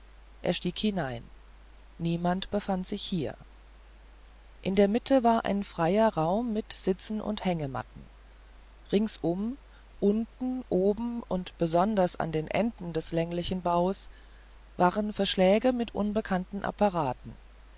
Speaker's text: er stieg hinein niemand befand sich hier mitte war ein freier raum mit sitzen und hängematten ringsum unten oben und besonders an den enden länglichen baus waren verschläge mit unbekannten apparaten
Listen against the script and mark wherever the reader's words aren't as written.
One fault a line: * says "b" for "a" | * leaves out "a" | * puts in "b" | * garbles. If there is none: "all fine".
* puts in "in der"
* puts in "des"